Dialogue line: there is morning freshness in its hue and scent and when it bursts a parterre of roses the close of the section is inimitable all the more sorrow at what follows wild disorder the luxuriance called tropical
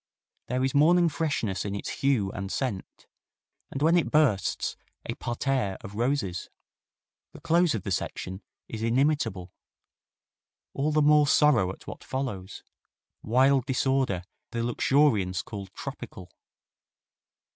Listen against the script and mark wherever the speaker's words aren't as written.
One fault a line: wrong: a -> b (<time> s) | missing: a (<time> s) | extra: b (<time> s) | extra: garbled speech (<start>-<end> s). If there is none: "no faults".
no faults